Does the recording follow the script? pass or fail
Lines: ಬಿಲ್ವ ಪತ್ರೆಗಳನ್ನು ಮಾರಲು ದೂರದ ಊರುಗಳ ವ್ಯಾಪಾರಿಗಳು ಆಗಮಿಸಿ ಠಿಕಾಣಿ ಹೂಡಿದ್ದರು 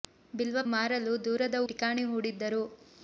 fail